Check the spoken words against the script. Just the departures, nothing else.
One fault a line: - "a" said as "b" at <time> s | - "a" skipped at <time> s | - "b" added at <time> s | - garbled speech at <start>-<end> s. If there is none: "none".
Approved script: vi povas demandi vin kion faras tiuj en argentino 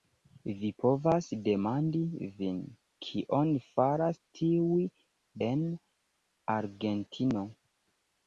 none